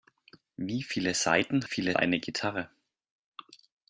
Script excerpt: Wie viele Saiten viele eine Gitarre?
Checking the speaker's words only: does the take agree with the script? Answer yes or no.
yes